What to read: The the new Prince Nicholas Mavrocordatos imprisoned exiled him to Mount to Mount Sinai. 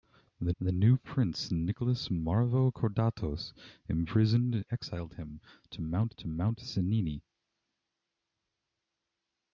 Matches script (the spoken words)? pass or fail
pass